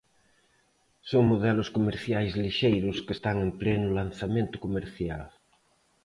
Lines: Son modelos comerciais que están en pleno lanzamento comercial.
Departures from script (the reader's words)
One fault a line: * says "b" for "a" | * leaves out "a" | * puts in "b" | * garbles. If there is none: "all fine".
* puts in "lixeiros"